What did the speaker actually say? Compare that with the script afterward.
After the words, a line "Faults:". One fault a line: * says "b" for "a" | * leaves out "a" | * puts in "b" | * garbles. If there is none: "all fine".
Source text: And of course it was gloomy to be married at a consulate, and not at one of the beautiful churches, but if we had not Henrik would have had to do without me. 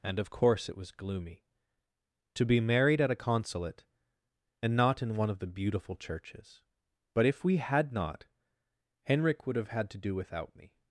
And of course it was gloomy to be married at a consulate, and not in one of the beautiful churches, but if we had not Henrik would have had to do without me.
Faults:
* says "in" for "at"